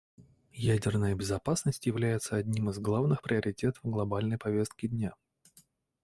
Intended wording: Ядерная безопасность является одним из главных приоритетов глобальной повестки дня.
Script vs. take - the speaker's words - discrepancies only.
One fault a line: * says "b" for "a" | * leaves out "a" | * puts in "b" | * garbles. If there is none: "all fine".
all fine